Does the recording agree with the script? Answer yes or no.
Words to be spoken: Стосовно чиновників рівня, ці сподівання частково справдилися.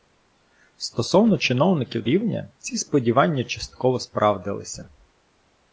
yes